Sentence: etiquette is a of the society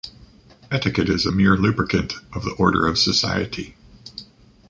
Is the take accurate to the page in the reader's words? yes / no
no